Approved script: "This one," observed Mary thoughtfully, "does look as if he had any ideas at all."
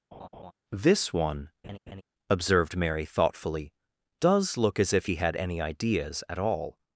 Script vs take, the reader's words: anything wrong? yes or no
no